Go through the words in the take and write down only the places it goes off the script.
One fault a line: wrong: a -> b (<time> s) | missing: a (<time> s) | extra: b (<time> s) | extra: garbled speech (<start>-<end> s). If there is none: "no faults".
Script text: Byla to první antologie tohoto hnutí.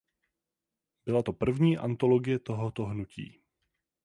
no faults